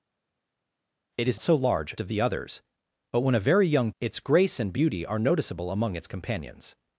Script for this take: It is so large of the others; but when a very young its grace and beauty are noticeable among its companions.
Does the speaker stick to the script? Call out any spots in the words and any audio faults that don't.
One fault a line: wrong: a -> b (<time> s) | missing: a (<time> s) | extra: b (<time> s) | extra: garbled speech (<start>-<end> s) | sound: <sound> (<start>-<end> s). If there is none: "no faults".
no faults